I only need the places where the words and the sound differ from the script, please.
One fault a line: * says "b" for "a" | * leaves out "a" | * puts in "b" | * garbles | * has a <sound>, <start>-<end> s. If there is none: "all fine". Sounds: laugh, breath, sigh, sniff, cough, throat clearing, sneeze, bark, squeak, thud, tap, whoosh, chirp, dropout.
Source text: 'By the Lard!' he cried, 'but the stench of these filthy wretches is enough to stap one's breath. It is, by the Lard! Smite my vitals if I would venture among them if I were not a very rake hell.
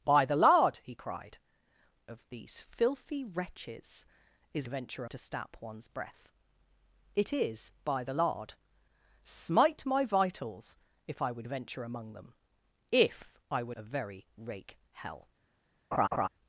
* leaves out "but the stench"
* says "venture" for "enough"
* leaves out "not"
* has a laugh, 15.9-16.3 s